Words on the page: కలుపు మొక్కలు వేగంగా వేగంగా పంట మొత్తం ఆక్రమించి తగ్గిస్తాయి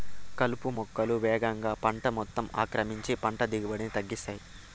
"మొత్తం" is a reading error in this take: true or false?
false